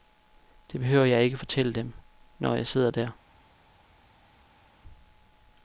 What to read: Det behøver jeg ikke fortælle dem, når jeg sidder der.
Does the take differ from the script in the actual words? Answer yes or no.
no